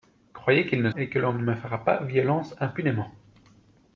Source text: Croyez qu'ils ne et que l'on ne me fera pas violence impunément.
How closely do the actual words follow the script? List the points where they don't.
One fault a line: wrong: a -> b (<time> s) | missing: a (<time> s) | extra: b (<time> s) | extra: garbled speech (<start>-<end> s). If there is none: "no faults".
no faults